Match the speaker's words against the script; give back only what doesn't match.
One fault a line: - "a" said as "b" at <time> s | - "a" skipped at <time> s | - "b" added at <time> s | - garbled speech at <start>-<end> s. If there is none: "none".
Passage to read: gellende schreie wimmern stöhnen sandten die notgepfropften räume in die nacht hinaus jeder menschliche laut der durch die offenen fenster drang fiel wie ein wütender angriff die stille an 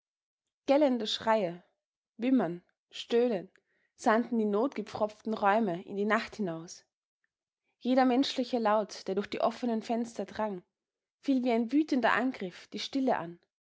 none